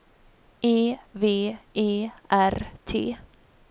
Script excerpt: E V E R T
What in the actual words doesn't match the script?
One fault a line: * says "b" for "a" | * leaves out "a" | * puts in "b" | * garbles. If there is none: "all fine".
all fine